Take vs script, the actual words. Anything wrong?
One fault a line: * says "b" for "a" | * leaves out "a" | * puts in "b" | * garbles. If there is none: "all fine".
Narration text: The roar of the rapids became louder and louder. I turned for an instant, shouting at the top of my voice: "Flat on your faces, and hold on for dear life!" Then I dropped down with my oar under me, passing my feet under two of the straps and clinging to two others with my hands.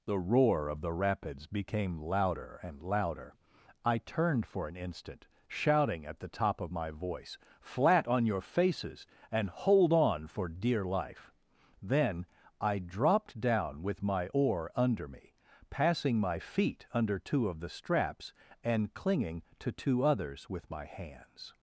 all fine